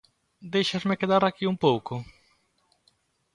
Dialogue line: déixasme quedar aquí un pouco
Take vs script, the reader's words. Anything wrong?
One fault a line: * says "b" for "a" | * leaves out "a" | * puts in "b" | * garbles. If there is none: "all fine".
all fine